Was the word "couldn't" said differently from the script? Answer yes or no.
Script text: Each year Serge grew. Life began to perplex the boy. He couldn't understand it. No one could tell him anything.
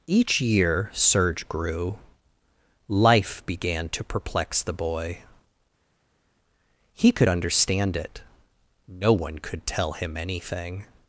yes